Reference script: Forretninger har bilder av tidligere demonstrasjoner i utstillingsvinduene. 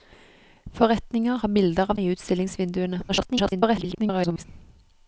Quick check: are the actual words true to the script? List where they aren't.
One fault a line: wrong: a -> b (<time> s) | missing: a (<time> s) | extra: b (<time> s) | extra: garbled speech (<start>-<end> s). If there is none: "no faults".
missing: tidligere demonstrasjoner (2.0 s)
extra: garbled speech (3.1-4.4 s)